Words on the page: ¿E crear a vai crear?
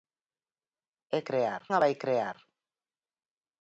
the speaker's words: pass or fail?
pass